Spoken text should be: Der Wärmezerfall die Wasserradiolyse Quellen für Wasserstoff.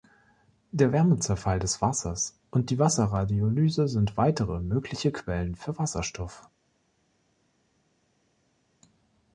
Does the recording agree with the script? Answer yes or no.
no